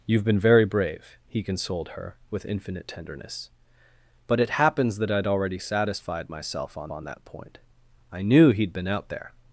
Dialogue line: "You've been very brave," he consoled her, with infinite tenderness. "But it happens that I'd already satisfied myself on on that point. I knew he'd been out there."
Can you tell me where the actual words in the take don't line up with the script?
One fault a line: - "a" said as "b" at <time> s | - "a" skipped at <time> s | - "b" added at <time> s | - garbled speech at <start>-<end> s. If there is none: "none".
none